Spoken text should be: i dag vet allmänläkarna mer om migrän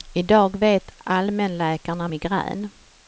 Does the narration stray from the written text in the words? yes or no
yes